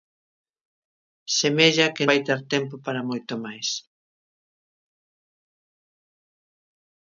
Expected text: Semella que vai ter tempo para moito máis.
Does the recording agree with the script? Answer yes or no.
yes